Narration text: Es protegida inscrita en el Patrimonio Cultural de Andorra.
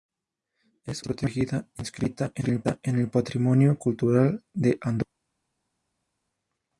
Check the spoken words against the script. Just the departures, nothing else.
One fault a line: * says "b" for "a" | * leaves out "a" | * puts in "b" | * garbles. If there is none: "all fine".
all fine